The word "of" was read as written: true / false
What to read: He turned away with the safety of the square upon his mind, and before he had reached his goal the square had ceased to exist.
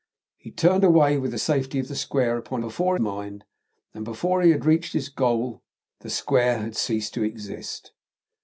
true